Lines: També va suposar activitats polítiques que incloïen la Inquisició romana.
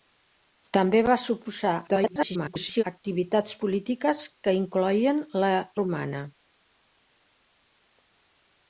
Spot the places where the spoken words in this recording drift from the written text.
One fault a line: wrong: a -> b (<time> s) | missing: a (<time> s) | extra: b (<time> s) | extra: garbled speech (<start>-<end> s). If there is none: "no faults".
extra: garbled speech (1.9-2.8 s)
missing: Inquisició (5.5 s)